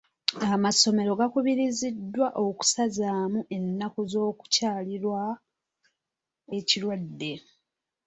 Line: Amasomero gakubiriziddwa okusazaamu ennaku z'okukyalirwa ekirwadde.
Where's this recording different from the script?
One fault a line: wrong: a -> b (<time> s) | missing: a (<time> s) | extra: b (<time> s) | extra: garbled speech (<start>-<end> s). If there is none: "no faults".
no faults